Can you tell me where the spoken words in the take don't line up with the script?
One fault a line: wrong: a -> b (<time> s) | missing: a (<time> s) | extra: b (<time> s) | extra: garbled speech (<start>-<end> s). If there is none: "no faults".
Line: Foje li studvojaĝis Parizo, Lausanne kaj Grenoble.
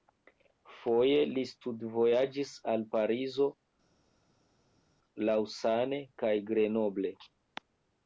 extra: al (2.7 s)